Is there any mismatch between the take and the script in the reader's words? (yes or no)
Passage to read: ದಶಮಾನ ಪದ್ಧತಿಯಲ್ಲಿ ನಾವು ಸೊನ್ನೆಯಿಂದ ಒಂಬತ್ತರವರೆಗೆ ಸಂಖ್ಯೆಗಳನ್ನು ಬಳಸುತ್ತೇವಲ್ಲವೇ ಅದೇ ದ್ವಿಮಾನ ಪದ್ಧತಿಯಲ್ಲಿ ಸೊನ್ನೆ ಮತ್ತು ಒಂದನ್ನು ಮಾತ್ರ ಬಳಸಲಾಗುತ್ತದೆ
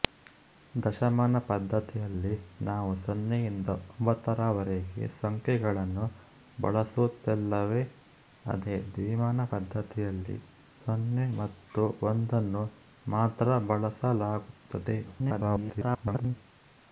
yes